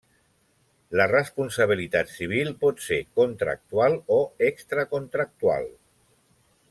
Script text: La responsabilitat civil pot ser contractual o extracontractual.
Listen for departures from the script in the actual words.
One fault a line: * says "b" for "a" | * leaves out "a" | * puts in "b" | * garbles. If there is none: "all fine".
all fine